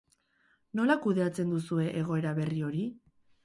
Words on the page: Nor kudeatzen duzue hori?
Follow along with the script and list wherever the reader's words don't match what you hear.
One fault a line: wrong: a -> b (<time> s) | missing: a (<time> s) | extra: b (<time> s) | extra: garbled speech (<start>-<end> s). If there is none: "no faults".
wrong: Nor -> Nola (0.8 s)
extra: egoera berri (2.0 s)